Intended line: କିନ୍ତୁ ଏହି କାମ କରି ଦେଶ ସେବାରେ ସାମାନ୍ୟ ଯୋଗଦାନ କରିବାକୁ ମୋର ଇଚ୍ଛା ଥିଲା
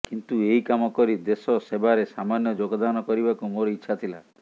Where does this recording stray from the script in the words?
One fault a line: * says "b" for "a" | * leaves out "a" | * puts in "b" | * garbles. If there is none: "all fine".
all fine